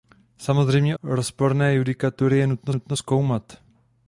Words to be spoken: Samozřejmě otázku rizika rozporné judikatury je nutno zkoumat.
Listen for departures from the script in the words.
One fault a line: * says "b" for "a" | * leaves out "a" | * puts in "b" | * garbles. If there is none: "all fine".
* leaves out "otázku rizika"
* puts in "nutno"